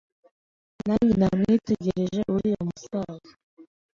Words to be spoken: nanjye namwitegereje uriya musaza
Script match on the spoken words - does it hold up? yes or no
yes